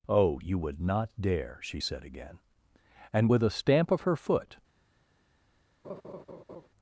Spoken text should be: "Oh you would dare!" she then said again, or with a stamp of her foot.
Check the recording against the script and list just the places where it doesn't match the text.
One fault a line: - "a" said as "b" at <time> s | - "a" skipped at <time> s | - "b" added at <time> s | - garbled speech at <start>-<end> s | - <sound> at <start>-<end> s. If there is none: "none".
- "not" added at 0.8 s
- "then" skipped at 1.8 s
- "or" said as "and" at 3.1 s
- laugh at 5.8-6.7 s